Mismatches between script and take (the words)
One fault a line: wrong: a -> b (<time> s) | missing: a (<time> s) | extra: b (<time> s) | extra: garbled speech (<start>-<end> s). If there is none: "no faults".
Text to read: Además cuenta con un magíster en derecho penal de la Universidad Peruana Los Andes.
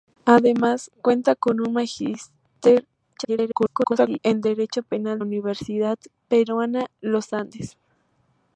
extra: garbled speech (3.1-4.2 s)
missing: de la (5.2 s)